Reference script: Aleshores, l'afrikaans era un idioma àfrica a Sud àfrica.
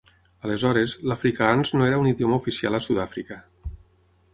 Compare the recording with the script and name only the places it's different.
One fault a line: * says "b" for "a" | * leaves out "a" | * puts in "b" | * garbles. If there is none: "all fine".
* puts in "no"
* says "oficial" for "àfrica"